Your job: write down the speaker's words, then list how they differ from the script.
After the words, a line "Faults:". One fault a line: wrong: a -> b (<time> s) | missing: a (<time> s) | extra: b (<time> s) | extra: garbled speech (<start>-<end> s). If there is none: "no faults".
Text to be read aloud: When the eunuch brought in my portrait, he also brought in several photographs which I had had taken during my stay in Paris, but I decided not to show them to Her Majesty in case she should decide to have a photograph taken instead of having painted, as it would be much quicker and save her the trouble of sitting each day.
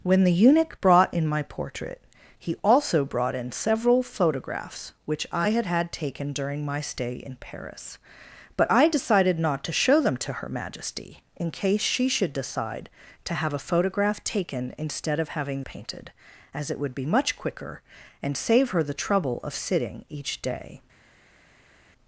When the eunuch brought in my portrait, he also brought in several photographs which I had had taken during my stay in Paris, but I decided not to show them to Her Majesty in case she should decide to have a photograph taken instead of having painted, as it would be much quicker and save her the trouble of sitting each day.
Faults:
no faults